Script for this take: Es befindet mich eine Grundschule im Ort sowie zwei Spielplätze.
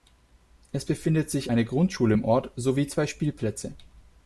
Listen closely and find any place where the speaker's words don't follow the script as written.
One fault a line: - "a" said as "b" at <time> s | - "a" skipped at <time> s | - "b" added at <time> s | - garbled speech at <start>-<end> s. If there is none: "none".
- "mich" said as "sich" at 1.3 s